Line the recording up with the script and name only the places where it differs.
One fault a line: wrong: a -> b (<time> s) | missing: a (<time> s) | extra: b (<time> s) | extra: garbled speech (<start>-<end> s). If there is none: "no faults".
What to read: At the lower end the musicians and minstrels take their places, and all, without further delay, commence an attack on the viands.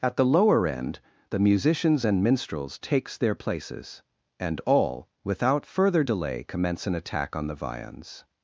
wrong: take -> takes (2.8 s)